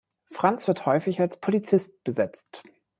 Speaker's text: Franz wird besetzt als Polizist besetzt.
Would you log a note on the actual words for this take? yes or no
yes